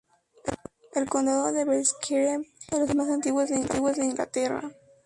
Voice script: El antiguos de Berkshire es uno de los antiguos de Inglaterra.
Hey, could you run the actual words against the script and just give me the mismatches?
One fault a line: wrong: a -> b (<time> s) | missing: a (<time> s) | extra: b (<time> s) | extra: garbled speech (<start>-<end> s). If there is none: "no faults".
wrong: antiguos -> condado (1.1 s)
extra: más (3.0 s)